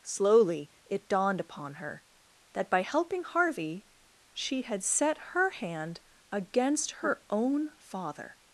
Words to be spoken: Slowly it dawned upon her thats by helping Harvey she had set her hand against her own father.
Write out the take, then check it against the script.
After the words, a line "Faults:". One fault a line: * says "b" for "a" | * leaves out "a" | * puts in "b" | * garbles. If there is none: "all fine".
Slowly it dawned upon her that by helping Harvey she had set her hand against her own father.
Faults:
* says "that" for "thats"